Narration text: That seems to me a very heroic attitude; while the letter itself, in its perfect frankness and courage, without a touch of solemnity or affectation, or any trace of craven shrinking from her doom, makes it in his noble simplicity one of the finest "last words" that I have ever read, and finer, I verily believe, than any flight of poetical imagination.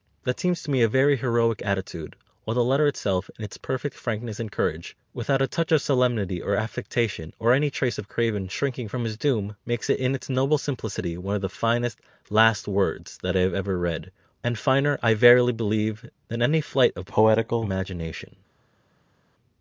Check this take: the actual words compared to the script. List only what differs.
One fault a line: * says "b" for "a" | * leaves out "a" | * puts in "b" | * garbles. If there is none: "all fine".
* says "his" for "her"
* says "its" for "his"